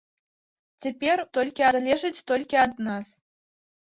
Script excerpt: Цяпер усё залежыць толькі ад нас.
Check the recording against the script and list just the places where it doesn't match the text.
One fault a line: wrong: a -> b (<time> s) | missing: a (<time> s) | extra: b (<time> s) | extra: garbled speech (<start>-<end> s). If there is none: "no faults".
wrong: усё -> толькі (1.4 s)